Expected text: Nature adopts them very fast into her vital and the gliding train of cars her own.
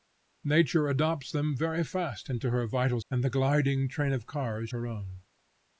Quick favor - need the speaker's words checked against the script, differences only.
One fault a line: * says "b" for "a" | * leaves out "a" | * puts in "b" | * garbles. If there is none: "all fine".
all fine